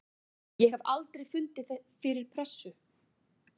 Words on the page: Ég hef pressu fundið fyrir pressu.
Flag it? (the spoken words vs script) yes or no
yes